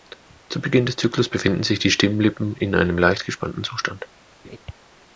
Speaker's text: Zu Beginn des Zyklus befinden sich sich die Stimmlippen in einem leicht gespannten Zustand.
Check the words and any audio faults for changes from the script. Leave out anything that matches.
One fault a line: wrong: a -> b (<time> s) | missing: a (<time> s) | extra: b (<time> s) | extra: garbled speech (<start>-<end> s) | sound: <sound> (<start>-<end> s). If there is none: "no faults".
missing: sich (1.8 s)
sound: laugh (4.4-4.6 s)